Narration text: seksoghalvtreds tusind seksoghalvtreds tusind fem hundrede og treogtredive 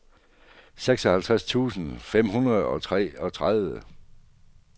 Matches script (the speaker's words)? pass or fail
fail